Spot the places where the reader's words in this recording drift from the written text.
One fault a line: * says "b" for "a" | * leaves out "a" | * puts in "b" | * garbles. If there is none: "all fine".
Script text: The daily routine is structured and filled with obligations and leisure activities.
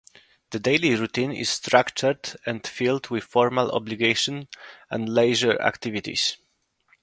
* puts in "formal"